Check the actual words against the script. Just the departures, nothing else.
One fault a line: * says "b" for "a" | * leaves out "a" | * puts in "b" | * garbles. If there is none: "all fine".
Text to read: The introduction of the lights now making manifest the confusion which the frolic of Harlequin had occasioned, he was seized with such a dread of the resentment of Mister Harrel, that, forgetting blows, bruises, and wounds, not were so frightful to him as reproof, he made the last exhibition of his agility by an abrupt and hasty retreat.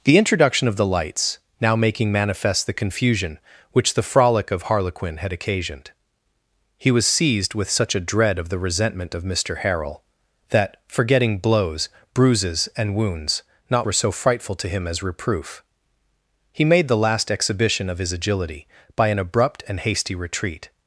all fine